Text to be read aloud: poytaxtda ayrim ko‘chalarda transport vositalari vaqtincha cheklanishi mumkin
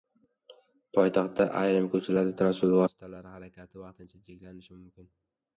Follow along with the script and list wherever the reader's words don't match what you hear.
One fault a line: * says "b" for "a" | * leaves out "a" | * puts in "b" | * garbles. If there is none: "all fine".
* puts in "harakati"